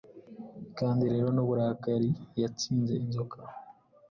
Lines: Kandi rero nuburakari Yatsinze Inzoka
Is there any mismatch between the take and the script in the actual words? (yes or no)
no